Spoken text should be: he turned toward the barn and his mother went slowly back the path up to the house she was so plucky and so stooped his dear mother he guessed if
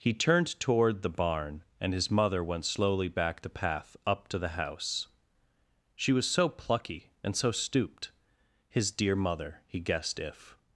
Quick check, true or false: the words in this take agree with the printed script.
true